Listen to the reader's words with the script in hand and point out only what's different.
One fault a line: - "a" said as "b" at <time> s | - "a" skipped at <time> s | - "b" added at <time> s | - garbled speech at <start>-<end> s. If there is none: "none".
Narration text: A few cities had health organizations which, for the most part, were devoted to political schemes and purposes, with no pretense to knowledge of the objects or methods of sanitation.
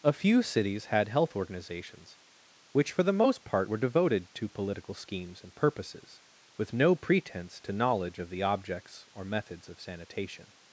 none